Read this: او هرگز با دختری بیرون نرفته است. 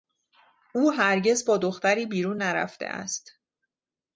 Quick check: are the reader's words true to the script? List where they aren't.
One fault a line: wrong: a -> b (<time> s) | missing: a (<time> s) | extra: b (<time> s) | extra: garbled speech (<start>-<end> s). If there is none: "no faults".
no faults